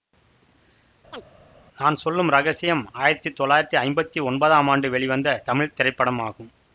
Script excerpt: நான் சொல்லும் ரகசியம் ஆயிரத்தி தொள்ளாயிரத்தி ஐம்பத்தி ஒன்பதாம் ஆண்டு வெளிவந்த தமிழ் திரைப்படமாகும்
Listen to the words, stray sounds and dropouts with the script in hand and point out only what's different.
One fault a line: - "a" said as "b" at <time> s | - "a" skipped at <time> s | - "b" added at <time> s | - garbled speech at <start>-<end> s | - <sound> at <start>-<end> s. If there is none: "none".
- chirp at 1.1-1.2 s